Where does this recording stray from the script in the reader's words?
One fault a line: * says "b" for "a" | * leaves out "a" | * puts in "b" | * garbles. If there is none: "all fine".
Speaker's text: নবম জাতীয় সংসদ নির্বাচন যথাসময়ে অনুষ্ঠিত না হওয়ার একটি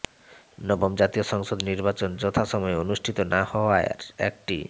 all fine